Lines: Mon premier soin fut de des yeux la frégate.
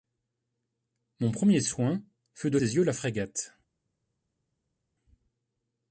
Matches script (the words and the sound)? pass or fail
pass